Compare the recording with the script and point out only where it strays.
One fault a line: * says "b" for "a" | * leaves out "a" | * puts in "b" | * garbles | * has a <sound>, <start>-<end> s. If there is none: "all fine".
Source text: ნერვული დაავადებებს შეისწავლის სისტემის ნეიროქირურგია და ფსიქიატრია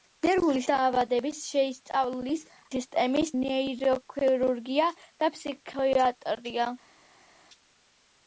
all fine